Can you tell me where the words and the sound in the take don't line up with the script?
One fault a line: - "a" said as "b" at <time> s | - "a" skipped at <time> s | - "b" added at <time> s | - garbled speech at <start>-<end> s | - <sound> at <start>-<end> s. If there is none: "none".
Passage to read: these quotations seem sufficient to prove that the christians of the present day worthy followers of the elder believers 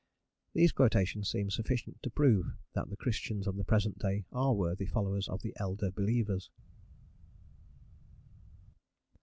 - "are" added at 4.3 s